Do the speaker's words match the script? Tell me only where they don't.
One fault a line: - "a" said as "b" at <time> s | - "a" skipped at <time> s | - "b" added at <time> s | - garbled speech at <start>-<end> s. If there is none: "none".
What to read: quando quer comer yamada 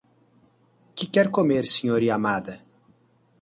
- "quando" said as "que" at 0.9 s
- "sr" added at 1.7 s